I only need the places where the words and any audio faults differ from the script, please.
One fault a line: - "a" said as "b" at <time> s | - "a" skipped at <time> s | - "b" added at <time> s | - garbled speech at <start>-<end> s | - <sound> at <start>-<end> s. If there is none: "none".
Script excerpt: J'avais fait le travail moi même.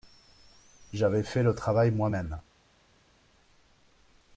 none